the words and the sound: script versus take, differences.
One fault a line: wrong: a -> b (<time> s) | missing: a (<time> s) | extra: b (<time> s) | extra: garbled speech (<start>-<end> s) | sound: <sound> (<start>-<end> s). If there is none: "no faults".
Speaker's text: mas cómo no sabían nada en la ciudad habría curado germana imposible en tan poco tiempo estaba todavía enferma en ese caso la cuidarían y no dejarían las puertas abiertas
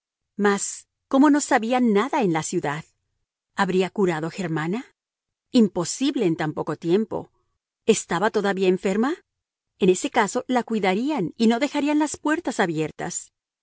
no faults